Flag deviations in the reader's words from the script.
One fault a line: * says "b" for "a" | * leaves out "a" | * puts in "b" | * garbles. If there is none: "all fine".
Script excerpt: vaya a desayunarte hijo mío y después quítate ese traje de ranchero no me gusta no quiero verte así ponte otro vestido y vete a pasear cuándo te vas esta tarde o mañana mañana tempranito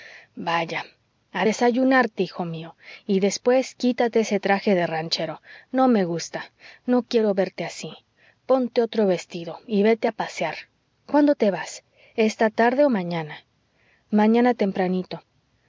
all fine